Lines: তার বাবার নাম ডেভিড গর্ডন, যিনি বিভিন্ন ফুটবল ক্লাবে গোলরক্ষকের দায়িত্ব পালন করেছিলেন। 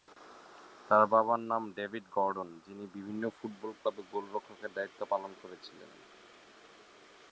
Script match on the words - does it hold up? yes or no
yes